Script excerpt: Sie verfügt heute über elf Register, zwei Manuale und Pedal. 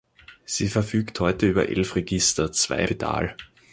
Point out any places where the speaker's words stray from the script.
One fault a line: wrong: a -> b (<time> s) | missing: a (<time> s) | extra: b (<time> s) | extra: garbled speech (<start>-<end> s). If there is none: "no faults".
missing: Manuale und (2.9 s)